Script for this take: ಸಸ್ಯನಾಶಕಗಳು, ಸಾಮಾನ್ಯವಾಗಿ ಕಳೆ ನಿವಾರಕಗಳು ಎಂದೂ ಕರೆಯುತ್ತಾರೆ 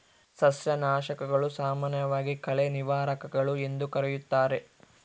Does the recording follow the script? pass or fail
pass